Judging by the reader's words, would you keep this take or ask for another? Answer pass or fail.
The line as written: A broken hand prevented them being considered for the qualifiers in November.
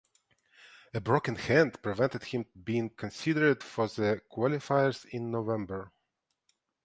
fail